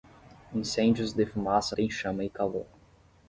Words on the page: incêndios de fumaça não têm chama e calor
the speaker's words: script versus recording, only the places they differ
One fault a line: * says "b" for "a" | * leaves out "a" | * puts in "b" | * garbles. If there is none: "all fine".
* leaves out "não"